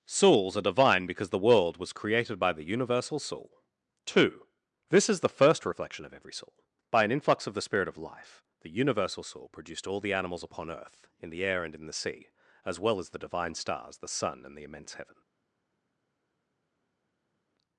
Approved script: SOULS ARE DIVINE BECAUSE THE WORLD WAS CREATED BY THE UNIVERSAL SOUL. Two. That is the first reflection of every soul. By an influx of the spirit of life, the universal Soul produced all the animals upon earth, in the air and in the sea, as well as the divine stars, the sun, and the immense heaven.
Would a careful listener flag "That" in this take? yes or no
yes